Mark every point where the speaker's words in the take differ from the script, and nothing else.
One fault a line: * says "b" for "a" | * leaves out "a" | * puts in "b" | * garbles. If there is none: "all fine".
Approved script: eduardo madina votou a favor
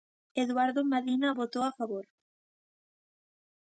all fine